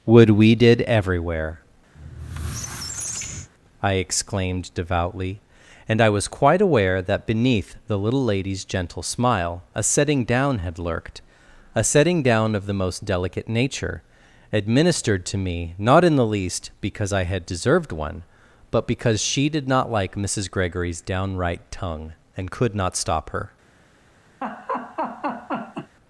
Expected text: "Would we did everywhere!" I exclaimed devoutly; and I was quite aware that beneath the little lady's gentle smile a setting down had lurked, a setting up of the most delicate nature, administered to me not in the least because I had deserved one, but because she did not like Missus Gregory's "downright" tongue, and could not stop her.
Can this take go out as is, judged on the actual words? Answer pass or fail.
fail